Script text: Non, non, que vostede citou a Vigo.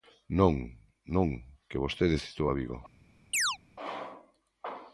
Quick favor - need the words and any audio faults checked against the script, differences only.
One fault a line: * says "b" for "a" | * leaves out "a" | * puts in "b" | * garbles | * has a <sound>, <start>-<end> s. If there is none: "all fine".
* has a chirp, 3.3-3.6 s